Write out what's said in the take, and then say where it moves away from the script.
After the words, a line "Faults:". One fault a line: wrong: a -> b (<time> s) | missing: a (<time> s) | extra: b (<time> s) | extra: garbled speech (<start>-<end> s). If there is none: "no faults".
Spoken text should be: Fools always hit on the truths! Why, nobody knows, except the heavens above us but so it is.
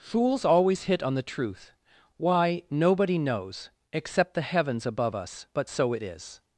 Fools always hit on the truth! Why, nobody knows, except the heavens above us but so it is.
Faults:
wrong: truths -> truth (1.2 s)